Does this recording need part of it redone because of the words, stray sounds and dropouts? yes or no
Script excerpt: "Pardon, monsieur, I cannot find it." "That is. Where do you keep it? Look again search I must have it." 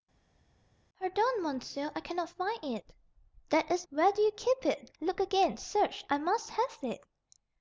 no